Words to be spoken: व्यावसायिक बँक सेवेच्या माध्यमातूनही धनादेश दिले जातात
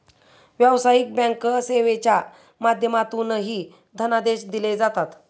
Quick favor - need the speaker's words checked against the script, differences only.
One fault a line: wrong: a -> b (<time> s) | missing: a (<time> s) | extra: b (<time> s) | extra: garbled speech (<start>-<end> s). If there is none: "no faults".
no faults